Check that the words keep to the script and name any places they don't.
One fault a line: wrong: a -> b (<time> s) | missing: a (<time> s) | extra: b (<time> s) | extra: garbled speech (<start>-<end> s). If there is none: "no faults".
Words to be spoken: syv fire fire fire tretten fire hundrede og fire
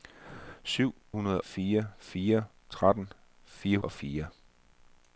wrong: fire -> hundrede (1.1 s)
missing: hundrede (3.8 s)